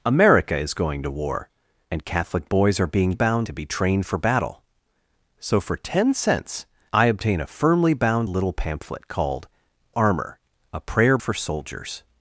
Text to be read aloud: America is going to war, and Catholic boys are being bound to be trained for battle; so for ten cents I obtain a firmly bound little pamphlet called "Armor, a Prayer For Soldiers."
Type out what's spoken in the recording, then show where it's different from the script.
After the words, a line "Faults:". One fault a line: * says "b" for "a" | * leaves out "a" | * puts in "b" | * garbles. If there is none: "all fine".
America is going to war, and Catholic boys are being bound to be trained for battle; so for ten cents I obtain a firmly bound little pamphlet called "Armor, a Prayer For Soldiers."
Faults:
all fine